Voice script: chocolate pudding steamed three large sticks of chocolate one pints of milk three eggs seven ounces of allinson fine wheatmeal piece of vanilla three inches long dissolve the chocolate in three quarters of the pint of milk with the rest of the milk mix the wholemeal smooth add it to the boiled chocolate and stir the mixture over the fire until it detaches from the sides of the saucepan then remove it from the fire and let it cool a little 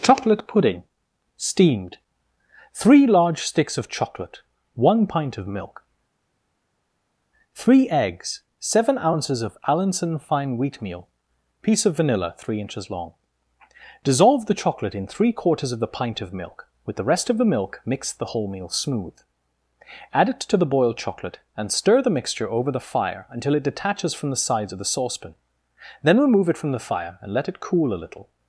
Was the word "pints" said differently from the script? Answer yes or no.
yes